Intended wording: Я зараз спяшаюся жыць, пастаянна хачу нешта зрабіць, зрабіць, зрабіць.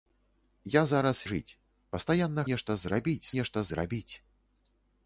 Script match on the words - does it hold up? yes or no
no